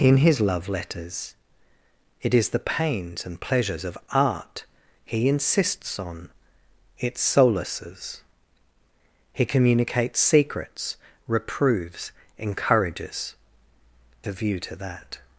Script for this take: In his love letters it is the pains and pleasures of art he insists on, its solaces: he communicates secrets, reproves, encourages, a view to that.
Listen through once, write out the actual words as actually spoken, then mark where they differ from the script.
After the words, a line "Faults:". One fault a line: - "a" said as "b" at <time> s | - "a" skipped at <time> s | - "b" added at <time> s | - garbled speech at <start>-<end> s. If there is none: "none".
In his love letters it is the pains and pleasures of art he insists on, its solaces: he communicates secrets, reproves, encourages, a view to that.
Faults:
none